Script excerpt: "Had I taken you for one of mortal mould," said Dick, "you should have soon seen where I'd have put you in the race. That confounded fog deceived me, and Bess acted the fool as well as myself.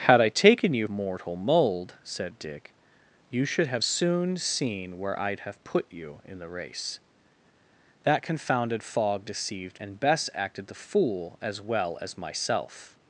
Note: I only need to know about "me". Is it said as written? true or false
false